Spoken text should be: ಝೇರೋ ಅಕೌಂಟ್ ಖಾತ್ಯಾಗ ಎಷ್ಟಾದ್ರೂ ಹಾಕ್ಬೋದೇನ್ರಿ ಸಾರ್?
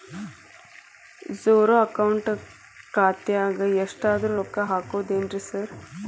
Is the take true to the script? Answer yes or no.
no